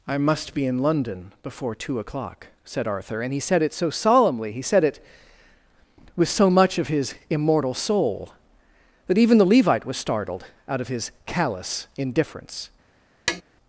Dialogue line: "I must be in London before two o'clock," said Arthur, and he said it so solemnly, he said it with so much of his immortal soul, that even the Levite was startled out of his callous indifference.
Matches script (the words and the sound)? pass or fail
fail